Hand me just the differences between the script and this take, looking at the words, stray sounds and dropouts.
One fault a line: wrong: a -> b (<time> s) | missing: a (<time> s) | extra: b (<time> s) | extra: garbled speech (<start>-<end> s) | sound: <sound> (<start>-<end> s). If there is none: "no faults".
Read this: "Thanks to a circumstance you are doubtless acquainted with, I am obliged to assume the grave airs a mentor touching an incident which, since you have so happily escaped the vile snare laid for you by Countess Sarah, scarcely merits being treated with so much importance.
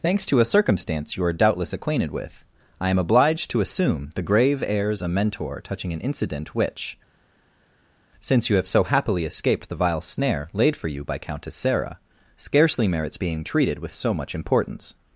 no faults